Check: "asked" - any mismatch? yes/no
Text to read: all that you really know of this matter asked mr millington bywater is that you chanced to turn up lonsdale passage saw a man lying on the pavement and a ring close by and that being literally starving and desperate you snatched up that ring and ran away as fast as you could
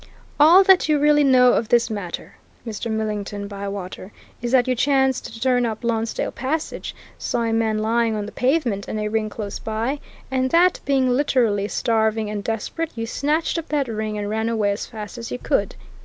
yes